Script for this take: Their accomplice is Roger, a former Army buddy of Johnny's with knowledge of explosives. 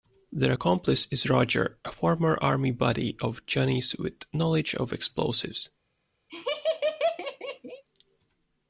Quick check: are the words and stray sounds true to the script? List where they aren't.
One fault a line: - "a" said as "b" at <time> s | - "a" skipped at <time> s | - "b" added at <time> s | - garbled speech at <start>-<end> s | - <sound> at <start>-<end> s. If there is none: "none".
- laugh at 6.3-7.8 s